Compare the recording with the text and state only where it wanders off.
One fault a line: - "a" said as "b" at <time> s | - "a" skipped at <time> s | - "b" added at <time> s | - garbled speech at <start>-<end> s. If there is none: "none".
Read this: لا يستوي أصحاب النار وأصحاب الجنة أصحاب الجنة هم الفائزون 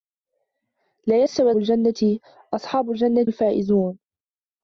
- "أصحاب النار وأصحاب" skipped at 1.5 s
- "هم" skipped at 3.3 s